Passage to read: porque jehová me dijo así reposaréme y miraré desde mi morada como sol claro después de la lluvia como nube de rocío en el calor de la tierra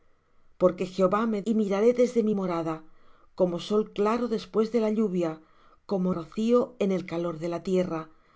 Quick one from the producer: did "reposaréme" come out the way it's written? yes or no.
no